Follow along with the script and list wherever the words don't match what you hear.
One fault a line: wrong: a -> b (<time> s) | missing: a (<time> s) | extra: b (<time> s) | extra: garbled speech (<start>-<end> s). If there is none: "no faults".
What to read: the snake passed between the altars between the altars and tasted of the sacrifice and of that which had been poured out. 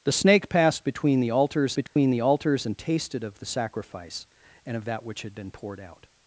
no faults